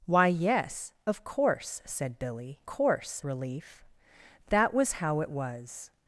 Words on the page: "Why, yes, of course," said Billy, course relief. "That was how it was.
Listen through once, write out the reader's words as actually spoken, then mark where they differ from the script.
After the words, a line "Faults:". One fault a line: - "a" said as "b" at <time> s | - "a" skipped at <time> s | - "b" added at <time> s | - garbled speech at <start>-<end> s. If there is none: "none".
"Why, yes, of course," said Billy, course relief. "That was how it was.
Faults:
none